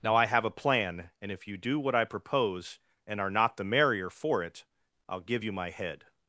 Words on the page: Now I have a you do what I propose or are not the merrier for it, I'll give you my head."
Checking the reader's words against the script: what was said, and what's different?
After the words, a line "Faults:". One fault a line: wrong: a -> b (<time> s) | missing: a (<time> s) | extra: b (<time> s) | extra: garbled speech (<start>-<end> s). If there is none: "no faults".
Now I have a plan, and if you do what I propose and are not the merrier for it, I'll give you my head."
Faults:
extra: plan and if (0.5 s)
wrong: or -> and (3.0 s)